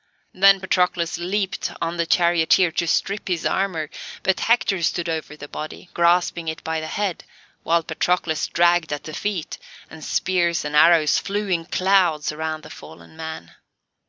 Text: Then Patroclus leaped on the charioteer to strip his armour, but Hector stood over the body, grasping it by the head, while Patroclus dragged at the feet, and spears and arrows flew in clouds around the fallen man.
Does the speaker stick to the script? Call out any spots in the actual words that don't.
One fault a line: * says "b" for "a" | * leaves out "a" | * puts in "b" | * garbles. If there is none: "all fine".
all fine